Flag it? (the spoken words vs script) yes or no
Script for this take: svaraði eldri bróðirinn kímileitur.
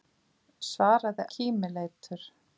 yes